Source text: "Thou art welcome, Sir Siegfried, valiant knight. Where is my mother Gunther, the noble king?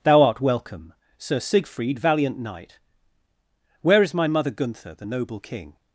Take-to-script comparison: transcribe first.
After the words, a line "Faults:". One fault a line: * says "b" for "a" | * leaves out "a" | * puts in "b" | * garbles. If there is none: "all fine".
"Thou art welcome, Sir Siegfried, valiant knight. Where is my mother Gunther, the noble king?
Faults:
all fine